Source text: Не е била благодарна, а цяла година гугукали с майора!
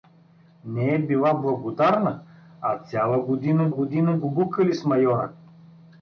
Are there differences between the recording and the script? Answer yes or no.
yes